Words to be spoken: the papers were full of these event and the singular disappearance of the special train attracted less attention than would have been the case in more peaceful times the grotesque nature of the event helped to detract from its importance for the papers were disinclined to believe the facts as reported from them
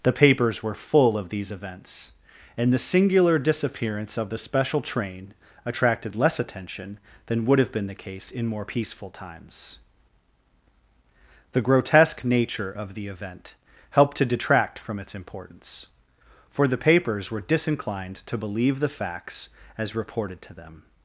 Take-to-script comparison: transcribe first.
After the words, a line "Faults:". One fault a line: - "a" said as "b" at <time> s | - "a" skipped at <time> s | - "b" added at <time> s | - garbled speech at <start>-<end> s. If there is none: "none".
the papers were full of these events and the singular disappearance of the special train attracted less attention than would have been the case in more peaceful times the grotesque nature of the event helped to detract from its importance for the papers were disinclined to believe the facts as reported to them
Faults:
- "event" said as "events" at 1.5 s
- "from" said as "to" at 20.4 s